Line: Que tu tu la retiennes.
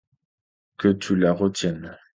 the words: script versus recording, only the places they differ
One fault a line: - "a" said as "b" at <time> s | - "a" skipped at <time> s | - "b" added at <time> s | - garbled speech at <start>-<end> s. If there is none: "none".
- "tu" skipped at 1.1 s